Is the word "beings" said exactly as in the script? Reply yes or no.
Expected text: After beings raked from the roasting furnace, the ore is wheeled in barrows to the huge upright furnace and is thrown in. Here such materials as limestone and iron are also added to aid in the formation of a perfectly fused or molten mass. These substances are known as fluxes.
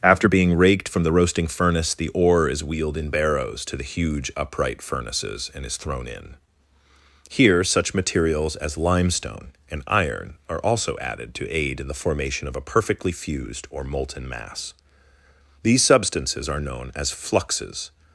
no